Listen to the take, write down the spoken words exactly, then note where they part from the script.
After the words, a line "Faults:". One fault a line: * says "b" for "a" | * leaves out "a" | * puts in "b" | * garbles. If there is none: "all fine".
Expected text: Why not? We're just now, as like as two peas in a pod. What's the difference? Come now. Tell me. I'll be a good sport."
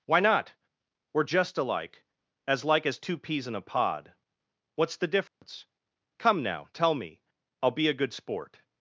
Why not? We're just alike, as like as two peas in a pod. What's the difference? Come now. Tell me. I'll be a good sport."
Faults:
* says "alike" for "now"